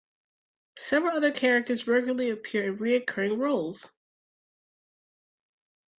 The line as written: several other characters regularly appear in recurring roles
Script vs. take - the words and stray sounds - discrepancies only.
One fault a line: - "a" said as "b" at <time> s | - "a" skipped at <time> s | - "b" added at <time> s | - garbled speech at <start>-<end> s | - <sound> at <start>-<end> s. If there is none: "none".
none